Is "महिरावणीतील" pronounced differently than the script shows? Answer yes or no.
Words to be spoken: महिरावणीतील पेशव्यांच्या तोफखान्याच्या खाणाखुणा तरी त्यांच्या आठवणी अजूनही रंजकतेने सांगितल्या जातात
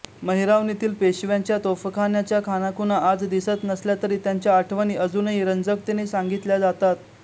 no